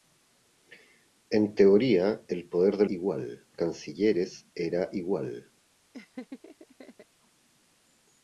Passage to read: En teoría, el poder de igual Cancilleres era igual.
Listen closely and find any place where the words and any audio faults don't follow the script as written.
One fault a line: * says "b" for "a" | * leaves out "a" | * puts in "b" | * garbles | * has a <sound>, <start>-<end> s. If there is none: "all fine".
* has a laugh, 5.9-7.1 s